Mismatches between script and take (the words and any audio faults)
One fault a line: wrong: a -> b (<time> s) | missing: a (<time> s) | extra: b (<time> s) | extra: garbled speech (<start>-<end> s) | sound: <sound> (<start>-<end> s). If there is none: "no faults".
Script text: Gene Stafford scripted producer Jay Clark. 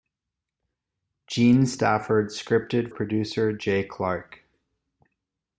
no faults